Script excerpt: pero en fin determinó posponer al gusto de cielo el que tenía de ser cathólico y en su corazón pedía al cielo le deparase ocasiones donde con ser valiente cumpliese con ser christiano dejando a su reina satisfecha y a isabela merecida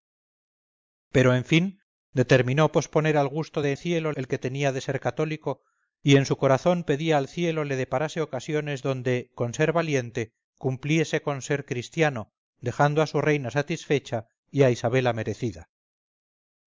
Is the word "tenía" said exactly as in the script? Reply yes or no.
yes